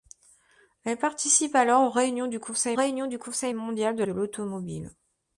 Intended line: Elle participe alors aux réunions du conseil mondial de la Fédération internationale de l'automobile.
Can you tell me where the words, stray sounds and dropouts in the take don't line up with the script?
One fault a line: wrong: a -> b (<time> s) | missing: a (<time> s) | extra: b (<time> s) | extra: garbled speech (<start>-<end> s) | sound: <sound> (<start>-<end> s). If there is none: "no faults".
wrong: mondial de la Fédération internationale -> réunions du conseil mondial de (2.7 s)